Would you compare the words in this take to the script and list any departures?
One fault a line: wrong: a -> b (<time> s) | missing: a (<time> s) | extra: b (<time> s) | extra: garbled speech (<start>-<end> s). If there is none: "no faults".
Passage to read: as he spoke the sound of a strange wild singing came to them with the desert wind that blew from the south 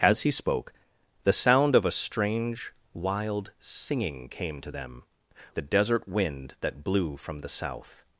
missing: with (5.0 s)